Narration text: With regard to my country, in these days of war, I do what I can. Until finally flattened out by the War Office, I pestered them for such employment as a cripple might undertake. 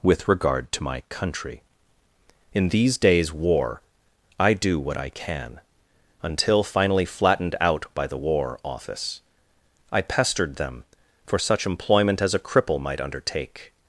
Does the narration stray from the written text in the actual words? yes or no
yes